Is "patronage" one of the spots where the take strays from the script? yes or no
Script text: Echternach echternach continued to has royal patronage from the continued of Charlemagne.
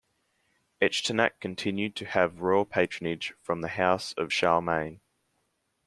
no